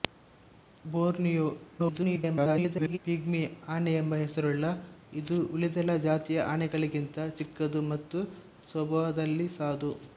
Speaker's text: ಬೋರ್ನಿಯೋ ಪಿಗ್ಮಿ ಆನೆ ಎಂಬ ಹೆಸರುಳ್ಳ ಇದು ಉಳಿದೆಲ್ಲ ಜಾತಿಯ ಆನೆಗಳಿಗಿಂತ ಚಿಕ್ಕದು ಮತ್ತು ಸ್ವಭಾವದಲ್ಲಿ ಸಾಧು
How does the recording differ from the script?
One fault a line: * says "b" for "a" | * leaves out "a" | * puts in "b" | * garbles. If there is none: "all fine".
* garbles